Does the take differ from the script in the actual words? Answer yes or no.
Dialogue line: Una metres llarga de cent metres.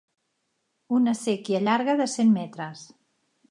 yes